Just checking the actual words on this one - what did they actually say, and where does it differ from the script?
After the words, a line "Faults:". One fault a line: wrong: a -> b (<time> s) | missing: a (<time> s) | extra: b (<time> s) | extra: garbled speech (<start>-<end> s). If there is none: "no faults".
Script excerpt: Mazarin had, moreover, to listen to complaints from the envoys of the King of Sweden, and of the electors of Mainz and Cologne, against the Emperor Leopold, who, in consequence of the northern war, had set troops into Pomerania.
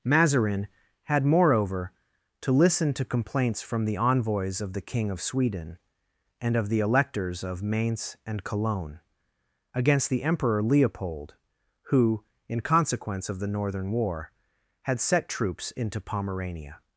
Mazarin had, moreover, to listen to complaints from the envoys of the King of Sweden, and of the electors of Mainz and Cologne, against the Emperor Leopold, who, in consequence of the northern war, had set troops into Pomerania.
Faults:
no faults